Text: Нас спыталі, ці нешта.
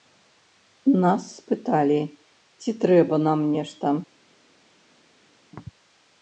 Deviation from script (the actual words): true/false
true